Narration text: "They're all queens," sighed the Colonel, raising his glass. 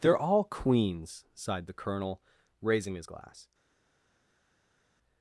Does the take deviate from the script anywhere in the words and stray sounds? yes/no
no